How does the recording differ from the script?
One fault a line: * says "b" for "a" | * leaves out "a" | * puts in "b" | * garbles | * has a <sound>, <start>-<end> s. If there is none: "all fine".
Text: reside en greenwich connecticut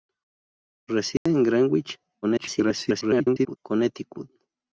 * has a dropout, 1.2-1.3 s
* garbles